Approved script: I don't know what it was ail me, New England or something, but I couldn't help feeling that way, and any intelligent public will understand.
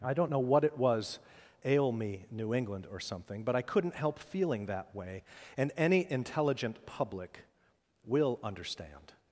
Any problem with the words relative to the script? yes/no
no